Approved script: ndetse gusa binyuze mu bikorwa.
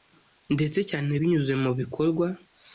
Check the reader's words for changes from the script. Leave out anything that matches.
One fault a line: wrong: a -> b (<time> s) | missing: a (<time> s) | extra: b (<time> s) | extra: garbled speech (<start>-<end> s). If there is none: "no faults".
wrong: gusa -> cyane (0.9 s)